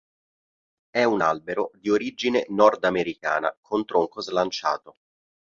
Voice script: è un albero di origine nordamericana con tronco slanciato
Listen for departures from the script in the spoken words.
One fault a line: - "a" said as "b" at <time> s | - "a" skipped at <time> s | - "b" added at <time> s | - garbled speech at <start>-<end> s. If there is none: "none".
none